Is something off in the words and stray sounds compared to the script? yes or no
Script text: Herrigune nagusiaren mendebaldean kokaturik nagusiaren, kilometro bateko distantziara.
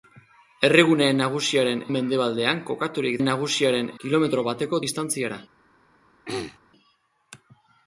yes